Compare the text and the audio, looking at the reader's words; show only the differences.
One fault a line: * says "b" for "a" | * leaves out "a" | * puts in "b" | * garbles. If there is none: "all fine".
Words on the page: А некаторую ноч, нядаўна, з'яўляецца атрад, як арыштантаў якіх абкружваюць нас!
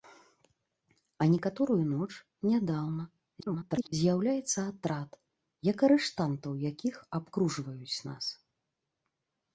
* garbles